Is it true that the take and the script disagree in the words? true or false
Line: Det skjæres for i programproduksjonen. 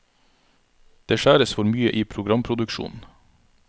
true